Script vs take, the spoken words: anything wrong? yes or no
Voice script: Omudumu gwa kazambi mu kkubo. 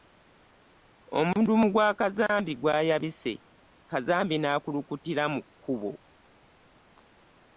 yes